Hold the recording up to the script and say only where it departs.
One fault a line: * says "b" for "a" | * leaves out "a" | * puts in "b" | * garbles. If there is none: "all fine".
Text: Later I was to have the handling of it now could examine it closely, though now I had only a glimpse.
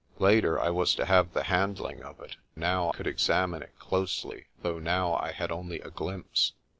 all fine